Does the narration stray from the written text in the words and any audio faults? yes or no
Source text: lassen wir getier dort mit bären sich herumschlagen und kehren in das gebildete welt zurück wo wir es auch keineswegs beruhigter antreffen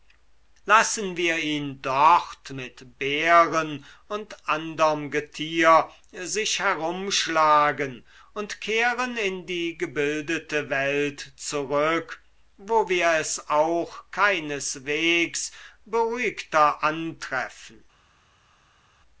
yes